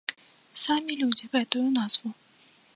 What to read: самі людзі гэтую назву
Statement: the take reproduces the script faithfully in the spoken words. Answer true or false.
true